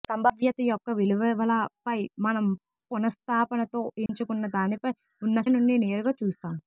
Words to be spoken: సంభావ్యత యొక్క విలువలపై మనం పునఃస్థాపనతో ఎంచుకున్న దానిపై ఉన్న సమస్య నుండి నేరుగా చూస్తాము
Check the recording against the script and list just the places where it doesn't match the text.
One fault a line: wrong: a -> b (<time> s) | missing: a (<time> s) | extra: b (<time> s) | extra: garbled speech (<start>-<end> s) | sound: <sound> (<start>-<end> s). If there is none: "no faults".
sound: dropout (4.1-4.1 s)
missing: సమస్య (5.4 s)